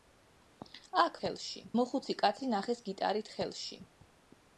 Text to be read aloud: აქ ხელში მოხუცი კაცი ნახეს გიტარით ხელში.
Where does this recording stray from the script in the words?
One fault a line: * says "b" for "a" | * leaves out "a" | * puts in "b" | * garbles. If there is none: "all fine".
all fine